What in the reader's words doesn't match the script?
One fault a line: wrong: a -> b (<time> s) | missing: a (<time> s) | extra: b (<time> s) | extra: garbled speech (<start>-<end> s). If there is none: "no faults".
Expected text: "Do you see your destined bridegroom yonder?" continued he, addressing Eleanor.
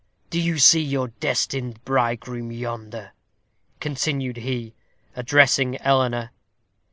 no faults